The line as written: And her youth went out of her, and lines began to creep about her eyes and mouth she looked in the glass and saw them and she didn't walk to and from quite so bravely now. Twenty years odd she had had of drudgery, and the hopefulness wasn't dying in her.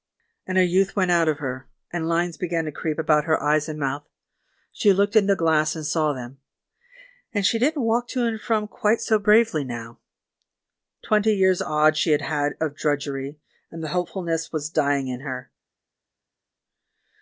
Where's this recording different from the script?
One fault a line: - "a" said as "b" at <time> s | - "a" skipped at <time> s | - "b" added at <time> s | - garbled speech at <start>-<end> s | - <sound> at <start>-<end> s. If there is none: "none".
- "wasn't" said as "was" at 14.5 s